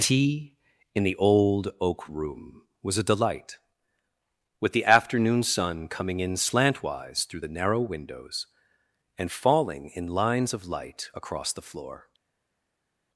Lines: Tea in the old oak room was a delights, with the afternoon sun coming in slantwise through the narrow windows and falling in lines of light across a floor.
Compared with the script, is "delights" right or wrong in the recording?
wrong